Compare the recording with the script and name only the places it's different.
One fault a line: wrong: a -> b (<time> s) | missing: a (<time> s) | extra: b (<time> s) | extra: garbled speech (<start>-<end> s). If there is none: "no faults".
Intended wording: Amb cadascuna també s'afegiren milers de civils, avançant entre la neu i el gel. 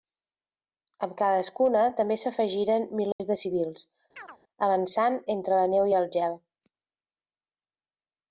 no faults